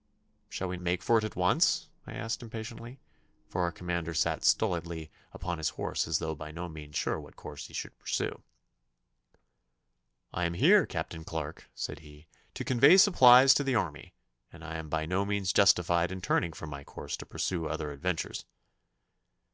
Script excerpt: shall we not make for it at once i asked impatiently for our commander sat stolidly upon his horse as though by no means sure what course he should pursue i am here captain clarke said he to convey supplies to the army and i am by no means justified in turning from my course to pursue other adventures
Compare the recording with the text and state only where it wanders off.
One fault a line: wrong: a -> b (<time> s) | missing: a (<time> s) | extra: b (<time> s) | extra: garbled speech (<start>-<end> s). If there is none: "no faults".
missing: not (0.8 s)